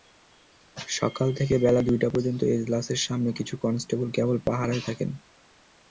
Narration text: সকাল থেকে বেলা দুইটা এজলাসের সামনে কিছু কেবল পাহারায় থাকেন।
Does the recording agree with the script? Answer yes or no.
no